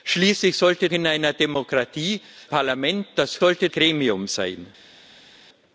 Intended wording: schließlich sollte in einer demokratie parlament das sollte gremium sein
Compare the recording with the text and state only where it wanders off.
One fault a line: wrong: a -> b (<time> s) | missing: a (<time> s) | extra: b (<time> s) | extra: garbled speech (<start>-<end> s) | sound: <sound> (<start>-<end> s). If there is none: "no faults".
no faults